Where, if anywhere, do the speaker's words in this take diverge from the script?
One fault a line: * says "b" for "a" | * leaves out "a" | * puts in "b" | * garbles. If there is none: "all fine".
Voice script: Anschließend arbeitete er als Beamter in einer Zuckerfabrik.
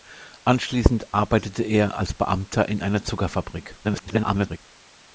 * garbles